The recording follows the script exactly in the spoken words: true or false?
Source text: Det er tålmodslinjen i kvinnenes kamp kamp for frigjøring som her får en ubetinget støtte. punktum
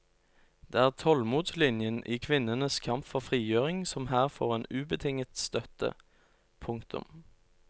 false